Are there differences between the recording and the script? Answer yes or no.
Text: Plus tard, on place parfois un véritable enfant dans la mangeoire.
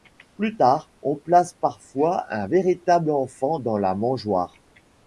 no